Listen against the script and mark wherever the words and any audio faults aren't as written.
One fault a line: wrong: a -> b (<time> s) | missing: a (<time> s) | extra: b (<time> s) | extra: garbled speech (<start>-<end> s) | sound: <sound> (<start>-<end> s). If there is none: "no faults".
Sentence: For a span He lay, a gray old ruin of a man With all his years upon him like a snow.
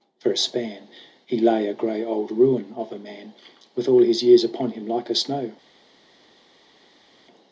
no faults